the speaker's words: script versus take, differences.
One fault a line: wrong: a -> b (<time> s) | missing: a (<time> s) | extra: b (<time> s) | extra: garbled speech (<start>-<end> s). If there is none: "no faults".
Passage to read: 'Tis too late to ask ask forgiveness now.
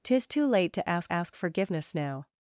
no faults